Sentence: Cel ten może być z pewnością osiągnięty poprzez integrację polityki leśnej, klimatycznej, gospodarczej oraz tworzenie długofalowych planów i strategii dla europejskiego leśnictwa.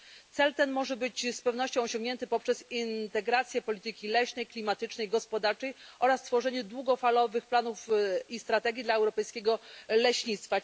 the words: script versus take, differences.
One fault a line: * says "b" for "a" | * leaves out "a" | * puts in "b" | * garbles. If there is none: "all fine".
all fine